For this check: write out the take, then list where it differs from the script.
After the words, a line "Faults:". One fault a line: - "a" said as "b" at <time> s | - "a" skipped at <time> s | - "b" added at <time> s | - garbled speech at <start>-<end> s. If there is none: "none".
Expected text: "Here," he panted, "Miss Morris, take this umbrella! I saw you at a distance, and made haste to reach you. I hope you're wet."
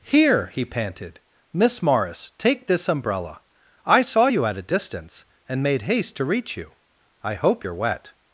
"Here," he panted, "Miss Morris, take this umbrella! I saw you at a distance, and made haste to reach you. I hope you're wet."
Faults:
none